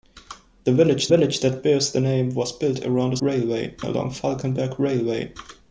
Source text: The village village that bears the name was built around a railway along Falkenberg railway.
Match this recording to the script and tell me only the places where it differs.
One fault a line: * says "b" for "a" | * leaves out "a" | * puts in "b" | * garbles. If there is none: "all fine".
all fine